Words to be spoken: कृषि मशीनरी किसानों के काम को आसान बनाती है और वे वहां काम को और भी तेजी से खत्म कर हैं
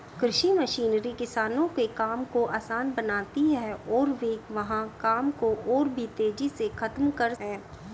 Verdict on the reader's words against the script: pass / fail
pass